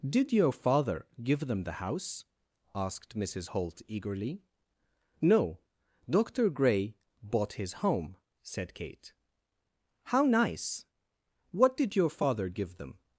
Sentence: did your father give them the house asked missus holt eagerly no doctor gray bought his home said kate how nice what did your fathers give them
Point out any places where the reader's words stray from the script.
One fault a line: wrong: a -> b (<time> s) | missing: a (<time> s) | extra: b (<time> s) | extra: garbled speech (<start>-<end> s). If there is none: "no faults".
wrong: fathers -> father (12.1 s)